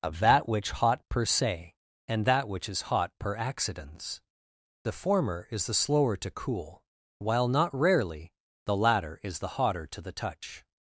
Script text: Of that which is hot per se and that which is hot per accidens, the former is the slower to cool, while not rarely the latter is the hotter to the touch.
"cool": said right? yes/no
yes